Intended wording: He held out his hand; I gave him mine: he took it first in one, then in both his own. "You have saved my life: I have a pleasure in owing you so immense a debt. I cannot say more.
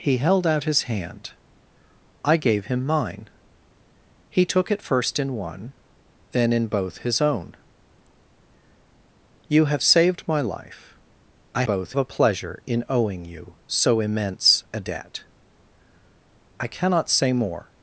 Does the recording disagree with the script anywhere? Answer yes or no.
yes